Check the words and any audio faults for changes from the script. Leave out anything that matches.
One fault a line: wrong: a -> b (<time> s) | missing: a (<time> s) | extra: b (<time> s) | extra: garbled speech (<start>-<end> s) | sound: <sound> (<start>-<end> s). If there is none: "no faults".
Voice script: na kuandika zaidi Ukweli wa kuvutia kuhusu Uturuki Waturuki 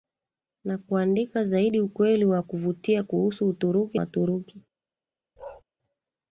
sound: bark (5.4-5.6 s)